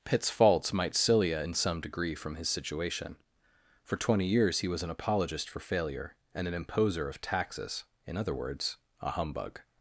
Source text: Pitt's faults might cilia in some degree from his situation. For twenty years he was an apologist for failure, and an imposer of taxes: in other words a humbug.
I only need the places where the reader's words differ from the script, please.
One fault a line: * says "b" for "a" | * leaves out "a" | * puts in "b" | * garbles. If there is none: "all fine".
all fine